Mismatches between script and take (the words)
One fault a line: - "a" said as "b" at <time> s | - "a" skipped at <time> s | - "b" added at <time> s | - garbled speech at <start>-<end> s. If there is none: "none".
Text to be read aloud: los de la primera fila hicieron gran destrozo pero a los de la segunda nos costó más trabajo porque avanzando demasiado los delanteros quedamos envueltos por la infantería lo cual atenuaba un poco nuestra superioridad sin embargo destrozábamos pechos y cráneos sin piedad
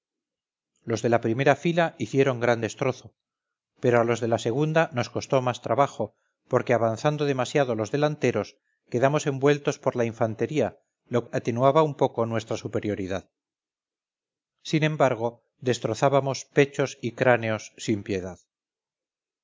- "cual" skipped at 11.3 s